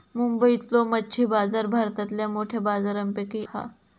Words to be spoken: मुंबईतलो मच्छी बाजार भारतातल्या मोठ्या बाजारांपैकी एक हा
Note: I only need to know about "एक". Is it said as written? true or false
false